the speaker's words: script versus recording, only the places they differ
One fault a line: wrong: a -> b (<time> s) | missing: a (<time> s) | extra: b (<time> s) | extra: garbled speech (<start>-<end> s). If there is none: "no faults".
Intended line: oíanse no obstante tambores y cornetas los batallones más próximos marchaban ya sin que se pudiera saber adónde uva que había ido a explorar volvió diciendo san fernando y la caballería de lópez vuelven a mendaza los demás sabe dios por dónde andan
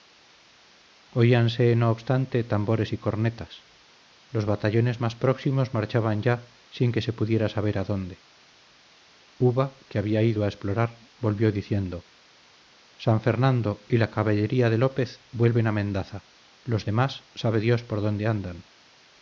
no faults